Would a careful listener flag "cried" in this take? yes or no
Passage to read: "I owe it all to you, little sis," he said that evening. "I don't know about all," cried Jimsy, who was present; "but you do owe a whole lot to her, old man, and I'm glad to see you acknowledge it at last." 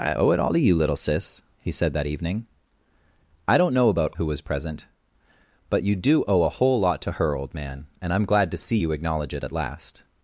yes